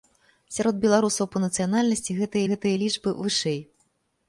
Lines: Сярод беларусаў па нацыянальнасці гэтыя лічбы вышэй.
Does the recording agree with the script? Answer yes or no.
no